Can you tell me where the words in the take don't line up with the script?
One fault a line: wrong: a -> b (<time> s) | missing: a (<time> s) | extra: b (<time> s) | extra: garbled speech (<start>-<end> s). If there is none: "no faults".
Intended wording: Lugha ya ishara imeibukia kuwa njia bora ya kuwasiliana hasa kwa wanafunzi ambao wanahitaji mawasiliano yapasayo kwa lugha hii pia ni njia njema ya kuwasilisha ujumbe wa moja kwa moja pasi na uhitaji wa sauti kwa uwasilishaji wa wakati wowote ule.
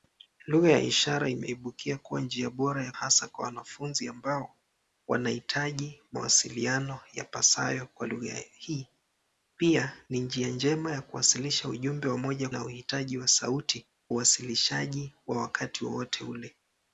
missing: kuwasiliana (2.9 s)
missing: kwa moja pasi (12.5 s)
missing: kwa (13.9 s)